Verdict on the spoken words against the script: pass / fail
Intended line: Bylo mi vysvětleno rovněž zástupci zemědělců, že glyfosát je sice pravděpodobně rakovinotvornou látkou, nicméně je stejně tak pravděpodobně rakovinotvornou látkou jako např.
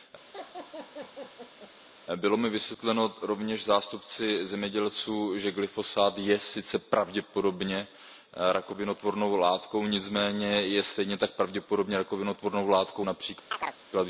fail